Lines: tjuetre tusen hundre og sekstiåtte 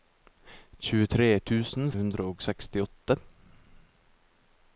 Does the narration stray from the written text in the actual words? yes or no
no